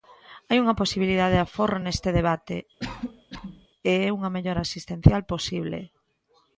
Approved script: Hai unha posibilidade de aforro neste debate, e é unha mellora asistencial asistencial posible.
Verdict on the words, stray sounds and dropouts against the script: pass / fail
fail